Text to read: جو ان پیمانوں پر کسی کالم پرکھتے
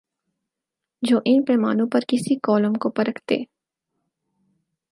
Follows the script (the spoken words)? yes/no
no